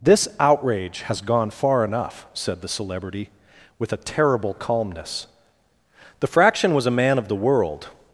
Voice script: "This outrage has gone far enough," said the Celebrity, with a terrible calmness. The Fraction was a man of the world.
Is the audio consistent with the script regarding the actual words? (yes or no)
yes